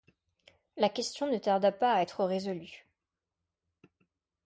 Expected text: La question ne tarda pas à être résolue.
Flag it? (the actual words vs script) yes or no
no